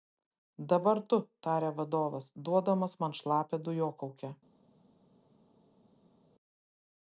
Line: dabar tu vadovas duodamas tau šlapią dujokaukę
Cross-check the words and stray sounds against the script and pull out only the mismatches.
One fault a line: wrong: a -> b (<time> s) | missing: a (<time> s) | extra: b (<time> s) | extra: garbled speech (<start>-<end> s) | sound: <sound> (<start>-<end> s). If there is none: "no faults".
extra: tarė (1.5 s)
wrong: tau -> man (3.0 s)